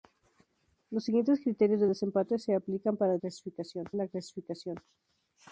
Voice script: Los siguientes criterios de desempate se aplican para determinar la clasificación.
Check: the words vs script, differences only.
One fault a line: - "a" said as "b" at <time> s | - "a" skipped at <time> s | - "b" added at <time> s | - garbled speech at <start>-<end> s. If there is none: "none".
- "determinar" said as "clasificación" at 3.2 s